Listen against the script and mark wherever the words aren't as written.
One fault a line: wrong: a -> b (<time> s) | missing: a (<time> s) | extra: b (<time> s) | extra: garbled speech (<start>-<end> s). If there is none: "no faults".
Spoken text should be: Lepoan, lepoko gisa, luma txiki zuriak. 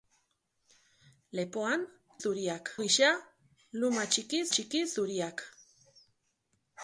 wrong: lepoko -> zuriak (2.2 s)
extra: txiki (4.6 s)